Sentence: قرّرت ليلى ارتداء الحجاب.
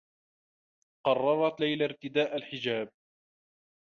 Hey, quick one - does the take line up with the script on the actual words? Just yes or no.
yes